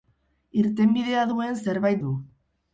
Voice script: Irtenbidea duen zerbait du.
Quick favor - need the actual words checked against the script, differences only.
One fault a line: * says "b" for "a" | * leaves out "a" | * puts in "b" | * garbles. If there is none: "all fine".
all fine